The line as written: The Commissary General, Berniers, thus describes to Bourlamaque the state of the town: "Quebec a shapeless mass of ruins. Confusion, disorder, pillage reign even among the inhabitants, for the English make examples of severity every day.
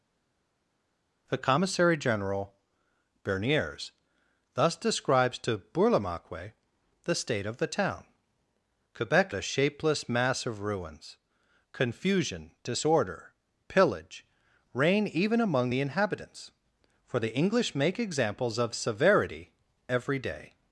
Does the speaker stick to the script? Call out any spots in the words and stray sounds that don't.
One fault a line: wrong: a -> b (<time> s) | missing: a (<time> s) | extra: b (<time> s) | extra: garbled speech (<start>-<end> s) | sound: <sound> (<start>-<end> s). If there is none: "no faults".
no faults